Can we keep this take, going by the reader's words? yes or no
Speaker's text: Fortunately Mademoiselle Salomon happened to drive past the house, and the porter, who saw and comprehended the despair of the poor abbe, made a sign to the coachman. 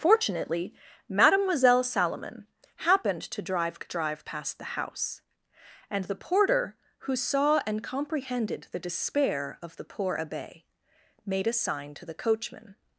no